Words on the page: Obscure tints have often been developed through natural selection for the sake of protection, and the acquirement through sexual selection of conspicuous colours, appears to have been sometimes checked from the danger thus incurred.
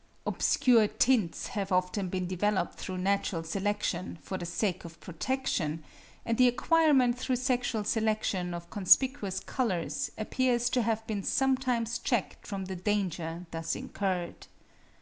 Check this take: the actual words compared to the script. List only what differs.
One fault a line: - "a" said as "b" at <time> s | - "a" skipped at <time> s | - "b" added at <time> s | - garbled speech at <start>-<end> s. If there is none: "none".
none